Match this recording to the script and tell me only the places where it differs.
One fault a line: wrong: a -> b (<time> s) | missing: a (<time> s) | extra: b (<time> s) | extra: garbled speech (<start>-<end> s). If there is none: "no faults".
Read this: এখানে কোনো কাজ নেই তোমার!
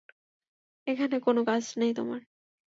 no faults